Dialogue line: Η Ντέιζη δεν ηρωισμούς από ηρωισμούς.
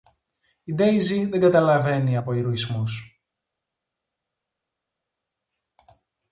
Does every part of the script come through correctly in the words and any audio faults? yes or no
no